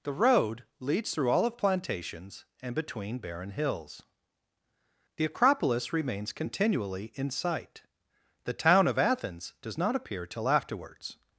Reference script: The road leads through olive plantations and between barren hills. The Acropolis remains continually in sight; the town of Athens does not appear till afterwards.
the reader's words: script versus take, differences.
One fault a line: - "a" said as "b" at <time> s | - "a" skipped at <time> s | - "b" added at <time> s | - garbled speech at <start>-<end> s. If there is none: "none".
none